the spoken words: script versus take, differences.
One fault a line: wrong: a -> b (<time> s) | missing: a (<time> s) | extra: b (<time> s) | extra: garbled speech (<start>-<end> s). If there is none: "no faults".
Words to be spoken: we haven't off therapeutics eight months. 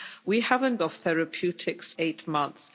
no faults